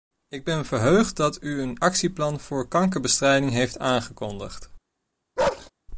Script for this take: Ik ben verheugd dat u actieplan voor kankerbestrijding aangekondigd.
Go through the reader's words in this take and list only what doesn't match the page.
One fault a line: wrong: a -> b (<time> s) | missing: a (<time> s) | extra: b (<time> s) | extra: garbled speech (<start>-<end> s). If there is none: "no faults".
extra: een (1.6 s)
extra: heeft (3.5 s)